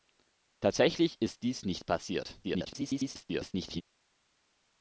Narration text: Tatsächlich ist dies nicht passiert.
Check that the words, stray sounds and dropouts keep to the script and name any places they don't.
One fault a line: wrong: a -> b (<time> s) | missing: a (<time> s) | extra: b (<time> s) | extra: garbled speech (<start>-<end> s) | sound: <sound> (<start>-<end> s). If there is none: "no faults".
extra: garbled speech (2.4-3.8 s)